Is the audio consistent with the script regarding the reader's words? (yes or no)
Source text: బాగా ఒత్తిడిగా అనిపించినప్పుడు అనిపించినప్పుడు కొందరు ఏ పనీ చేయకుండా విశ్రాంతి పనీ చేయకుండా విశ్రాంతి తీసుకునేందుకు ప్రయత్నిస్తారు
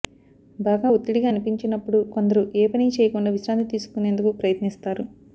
no